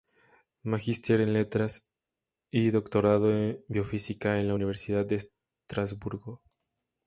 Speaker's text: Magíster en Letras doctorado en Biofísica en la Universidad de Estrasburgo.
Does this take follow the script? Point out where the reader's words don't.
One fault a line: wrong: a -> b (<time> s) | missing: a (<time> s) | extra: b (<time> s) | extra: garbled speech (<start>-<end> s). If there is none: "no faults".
extra: y (2.5 s)